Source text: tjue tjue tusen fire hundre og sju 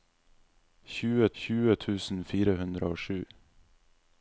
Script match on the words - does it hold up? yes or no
yes